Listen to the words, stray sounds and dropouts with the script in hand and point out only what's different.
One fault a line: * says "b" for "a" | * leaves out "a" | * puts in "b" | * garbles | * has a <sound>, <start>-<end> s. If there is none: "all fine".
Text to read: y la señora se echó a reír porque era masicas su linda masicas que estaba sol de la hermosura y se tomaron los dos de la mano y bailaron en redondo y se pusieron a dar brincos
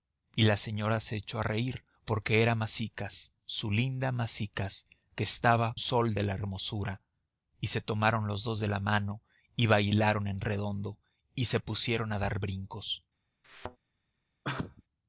* has a thud, 13.4-13.8 s
* has a sneeze, 14.4-14.8 s